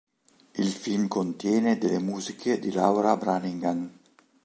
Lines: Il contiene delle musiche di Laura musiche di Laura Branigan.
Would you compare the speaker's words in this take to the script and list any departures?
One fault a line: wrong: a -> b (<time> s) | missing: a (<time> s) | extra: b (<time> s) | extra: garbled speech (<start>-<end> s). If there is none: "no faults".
extra: film (0.7 s)
missing: musiche di Laura (3.2 s)